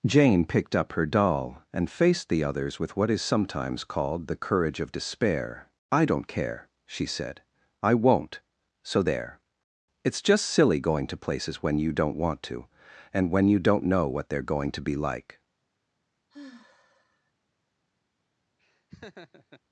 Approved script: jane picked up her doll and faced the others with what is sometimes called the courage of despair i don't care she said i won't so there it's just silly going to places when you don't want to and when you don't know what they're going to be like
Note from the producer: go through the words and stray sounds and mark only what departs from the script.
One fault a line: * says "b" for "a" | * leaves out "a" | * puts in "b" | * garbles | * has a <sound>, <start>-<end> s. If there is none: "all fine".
* has a sigh, 16.3-17.3 s
* has a laugh, 18.6-19.6 s